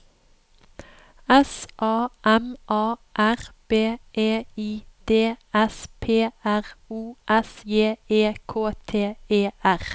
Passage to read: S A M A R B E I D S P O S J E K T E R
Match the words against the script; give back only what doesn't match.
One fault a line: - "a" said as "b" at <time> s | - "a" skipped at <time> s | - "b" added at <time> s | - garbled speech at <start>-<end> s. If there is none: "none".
- "R" added at 6.4 s